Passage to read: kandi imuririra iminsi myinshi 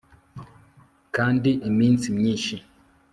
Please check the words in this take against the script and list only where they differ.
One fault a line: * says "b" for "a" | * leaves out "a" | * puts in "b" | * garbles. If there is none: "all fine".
* leaves out "imuririra"